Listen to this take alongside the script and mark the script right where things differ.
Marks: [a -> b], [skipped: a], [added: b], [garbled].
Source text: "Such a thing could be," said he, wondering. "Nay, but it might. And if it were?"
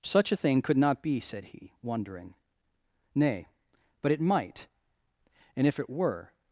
"Such a thing could [added: not] be," said he, wondering. "Nay, but it might. And if it were?"